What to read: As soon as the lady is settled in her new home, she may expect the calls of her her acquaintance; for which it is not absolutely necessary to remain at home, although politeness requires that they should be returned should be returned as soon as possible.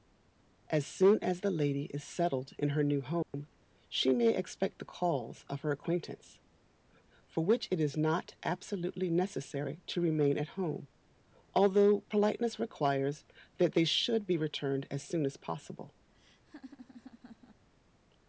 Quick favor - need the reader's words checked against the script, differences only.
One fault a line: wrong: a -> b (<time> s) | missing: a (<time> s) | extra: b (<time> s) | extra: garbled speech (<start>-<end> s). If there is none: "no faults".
missing: her (5.7 s)
missing: should be returned (14.9 s)